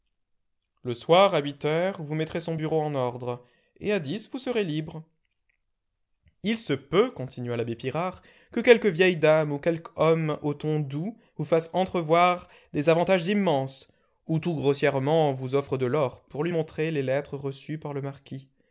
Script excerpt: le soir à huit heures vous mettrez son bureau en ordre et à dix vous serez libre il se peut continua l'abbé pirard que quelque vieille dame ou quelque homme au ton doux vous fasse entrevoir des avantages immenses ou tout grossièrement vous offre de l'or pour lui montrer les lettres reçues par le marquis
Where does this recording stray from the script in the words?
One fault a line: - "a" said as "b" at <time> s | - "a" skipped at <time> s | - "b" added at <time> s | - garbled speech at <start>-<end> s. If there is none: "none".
none